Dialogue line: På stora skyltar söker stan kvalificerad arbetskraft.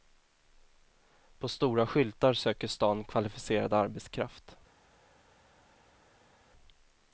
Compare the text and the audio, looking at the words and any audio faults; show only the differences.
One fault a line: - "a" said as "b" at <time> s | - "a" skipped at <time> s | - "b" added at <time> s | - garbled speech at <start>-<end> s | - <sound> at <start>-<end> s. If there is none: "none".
none